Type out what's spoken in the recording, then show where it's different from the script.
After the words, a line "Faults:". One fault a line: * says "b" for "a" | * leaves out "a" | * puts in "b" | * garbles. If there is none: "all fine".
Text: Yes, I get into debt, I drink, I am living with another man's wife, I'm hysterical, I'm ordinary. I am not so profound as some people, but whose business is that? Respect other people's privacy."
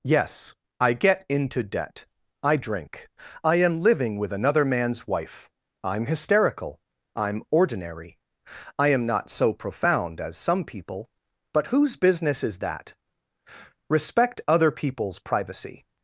Yes, I get into debt, I drink, I am living with another man's wife, I'm hysterical, I'm ordinary. I am not so profound as some people, but whose business is that? Respect other people's privacy."
Faults:
all fine